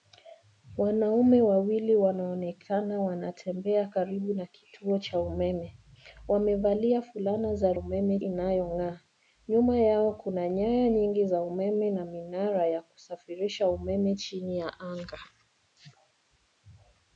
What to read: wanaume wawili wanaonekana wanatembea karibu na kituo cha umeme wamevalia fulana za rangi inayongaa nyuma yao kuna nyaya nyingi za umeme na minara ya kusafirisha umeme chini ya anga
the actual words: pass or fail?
fail